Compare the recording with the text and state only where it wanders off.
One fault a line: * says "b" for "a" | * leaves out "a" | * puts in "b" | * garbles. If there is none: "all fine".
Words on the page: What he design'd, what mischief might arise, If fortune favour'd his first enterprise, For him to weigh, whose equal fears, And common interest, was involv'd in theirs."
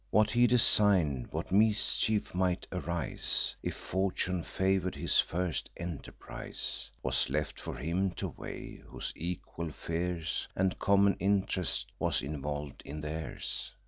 * puts in "Was left"